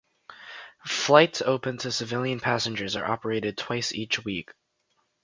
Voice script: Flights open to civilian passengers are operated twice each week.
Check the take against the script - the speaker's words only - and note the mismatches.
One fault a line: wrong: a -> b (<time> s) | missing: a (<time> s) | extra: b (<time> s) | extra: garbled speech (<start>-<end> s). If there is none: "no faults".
no faults